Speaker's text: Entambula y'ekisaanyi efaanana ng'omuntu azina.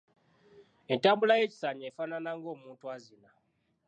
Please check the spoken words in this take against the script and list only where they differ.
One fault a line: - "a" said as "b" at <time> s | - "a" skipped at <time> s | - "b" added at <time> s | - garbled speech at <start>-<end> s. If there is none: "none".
none